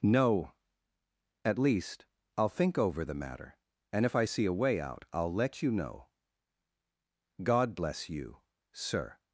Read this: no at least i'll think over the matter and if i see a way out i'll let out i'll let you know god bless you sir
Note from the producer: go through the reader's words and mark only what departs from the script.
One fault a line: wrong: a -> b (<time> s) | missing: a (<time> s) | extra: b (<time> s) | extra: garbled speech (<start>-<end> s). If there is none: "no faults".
missing: out i'll let (5.6 s)